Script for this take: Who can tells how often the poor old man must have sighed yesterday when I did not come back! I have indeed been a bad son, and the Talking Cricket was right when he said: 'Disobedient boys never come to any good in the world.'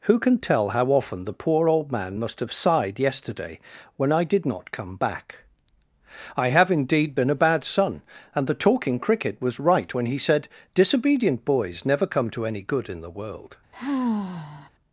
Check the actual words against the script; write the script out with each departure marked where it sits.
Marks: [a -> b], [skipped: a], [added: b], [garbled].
Who can [tells -> tell] how often the poor old man must have sighed yesterday when I did not come back! I have indeed been a bad son, and the Talking Cricket was right when he said: 'Disobedient boys never come to any good in the world.'